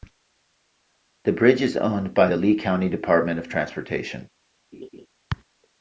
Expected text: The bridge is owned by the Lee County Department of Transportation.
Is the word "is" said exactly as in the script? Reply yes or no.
yes